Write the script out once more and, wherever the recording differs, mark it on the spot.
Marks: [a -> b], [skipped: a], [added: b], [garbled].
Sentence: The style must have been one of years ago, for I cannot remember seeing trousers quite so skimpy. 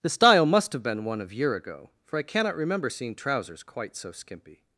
The style must have been one of [years -> year] ago, for I cannot remember seeing trousers quite so skimpy.